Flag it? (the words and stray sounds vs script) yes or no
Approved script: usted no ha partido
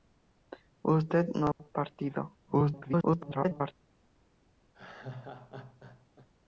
yes